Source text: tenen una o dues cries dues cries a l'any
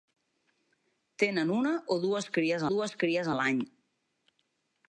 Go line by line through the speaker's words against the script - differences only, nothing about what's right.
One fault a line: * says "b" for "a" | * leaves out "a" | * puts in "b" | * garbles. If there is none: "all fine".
all fine